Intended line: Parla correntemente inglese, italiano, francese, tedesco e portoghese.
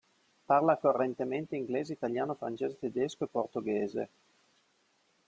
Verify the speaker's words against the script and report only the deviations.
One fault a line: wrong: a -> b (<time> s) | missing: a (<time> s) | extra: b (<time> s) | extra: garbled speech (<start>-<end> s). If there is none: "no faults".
no faults